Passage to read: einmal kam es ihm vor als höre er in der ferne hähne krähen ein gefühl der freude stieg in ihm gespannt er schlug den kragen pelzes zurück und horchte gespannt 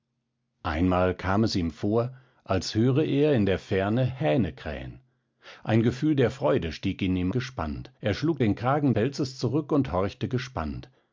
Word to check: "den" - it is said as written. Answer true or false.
true